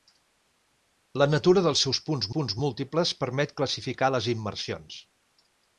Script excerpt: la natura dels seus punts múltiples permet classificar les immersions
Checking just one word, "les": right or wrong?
right